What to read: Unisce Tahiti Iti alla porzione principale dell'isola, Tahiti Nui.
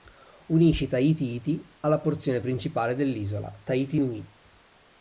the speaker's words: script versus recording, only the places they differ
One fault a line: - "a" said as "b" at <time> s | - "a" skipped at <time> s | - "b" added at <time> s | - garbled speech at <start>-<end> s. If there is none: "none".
none